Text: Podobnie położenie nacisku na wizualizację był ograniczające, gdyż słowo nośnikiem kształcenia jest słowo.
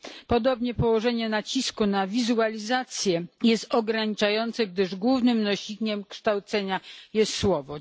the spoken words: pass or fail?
fail